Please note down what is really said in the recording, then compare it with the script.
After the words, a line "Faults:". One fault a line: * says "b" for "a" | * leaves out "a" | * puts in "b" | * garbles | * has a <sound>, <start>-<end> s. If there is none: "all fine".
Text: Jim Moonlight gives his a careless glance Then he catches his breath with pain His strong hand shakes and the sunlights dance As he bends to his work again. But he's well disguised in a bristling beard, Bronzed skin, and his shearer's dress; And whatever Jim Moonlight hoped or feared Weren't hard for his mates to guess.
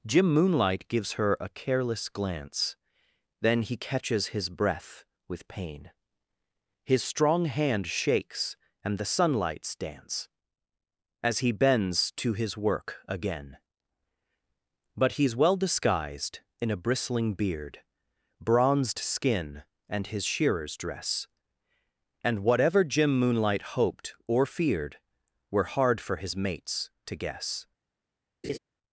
Jim Moonlight gives her a careless glance Then he catches his breath with pain His strong hand shakes and the sunlights dance As he bends to his work again. But he's well disguised in a bristling beard, Bronzed skin, and his shearer's dress; And whatever Jim Moonlight hoped or feared Were hard for his mates to guess.
Faults:
* says "her" for "his"
* says "Were" for "Weren't"
* has a laugh, 28.4-28.6 s